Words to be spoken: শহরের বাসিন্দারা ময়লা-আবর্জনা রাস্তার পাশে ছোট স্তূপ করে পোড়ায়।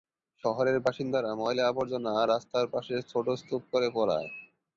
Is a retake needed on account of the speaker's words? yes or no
no